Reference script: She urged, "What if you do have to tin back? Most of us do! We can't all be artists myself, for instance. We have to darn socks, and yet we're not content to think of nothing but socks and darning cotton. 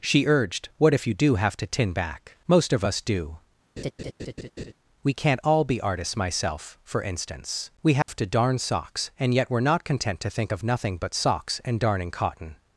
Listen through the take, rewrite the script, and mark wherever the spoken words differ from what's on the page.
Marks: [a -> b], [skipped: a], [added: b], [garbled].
She urged, "What if you do have to tin back? Most of us do! We can't all be artists myself, for instance. We have to darn socks, and yet we're not content to think of nothing but socks and darning cotton.